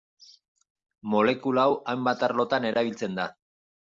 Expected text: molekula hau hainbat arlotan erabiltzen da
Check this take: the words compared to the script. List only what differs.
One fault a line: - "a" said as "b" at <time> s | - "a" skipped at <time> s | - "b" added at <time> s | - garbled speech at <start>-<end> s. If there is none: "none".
none